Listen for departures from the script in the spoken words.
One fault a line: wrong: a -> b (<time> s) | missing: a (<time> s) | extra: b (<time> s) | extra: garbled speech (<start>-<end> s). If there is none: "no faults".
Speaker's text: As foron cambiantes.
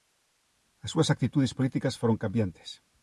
extra: súas actitudes políticas (0.9 s)